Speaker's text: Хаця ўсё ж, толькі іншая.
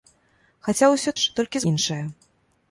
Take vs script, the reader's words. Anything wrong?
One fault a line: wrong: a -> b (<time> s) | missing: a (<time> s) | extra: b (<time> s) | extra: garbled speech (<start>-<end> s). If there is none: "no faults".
no faults